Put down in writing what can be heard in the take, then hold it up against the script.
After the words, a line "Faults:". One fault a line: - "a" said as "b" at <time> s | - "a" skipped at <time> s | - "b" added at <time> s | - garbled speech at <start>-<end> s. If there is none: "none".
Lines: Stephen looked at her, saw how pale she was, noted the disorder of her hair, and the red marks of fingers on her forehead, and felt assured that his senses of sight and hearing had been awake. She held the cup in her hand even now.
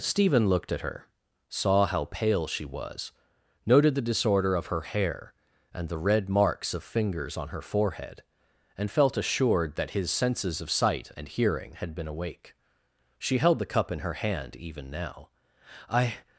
Stephen looked at her, saw how pale she was, noted the disorder of her hair, and the red marks of fingers on her forehead, and felt assured that his senses of sight and hearing had been awake. She held the cup in her hand even now. 'I
Faults:
- "I" added at 15.9 s